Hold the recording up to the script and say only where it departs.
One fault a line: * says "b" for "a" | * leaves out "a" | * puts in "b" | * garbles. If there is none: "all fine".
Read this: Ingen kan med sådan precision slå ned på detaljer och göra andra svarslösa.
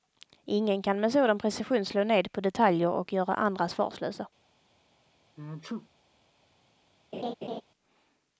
all fine